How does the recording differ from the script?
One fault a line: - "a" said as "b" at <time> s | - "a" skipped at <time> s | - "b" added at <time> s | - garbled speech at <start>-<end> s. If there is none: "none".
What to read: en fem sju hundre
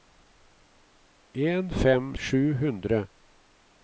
none